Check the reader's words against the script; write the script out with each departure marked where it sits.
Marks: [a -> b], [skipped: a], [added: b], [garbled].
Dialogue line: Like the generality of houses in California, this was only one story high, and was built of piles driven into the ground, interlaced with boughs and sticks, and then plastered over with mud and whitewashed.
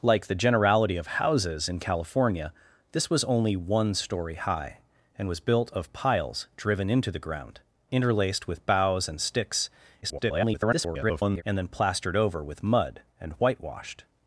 Like the generality of houses in California, this was only one story high, and was built of piles driven into the ground, interlaced with boughs and sticks, [garbled] and then plastered over with mud and whitewashed.